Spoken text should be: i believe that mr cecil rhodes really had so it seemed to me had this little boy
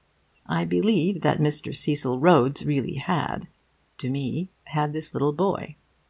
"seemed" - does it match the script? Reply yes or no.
no